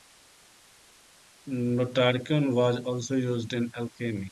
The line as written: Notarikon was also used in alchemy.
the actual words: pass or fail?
pass